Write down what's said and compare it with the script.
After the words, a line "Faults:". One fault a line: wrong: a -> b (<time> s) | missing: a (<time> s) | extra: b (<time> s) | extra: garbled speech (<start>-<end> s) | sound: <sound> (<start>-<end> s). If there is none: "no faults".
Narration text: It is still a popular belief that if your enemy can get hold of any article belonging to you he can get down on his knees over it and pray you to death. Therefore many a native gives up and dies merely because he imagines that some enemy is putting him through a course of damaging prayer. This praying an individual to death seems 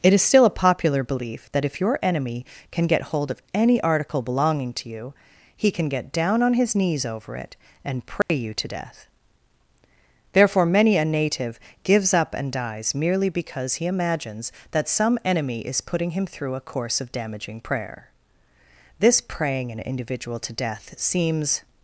It is still a popular belief that if your enemy can get hold of any article belonging to you he can get down on his knees over it and pray you to death. Therefore many a native gives up and dies merely because he imagines that some enemy is putting him through a course of damaging prayer. This praying an individual to death seems
Faults:
sound: dropout (8.2-8.3 s)